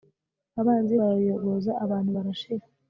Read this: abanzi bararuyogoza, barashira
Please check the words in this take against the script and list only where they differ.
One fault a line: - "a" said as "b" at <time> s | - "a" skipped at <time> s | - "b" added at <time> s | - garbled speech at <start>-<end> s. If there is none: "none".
- "abantu" added at 1.8 s